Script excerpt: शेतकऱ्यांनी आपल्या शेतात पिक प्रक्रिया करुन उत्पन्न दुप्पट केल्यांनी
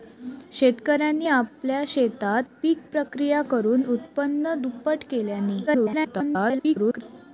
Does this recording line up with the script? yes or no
no